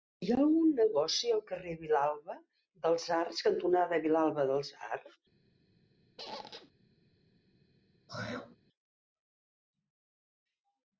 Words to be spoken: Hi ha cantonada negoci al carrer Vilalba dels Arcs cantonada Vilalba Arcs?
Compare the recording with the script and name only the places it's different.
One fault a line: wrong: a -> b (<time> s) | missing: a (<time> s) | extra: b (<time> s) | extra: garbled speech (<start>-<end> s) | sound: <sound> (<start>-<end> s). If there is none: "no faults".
wrong: cantonada -> algun (0.4 s)
extra: dels (4.5 s)
sound: squeak (6.2-6.7 s)
sound: throat clearing (8.1-8.6 s)